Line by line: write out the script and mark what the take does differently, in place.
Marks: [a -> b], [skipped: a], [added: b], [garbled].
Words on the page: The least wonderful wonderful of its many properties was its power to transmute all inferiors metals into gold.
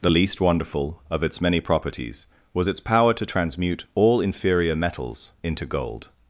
The least wonderful [skipped: wonderful] of its many properties was its power to transmute all [inferiors -> inferior] metals into gold.